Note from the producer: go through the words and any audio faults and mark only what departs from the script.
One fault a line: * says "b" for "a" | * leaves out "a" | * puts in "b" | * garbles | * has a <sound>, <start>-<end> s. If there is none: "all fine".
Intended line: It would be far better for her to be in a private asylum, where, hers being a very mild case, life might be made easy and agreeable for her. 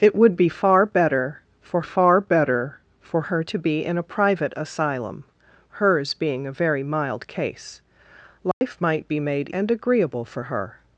* puts in "far better for"
* leaves out "where"
* has a dropout, 8.5-8.6 s
* leaves out "easy"